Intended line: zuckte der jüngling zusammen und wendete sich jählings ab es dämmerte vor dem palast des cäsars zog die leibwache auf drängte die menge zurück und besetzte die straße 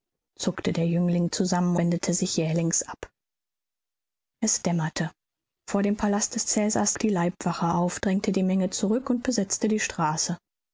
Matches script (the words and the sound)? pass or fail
fail